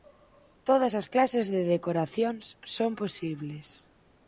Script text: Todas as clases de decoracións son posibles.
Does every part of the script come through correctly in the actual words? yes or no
yes